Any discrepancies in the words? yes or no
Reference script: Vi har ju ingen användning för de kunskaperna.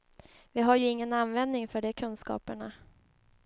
no